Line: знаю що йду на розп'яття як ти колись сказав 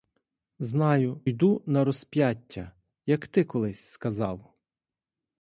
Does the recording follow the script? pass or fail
fail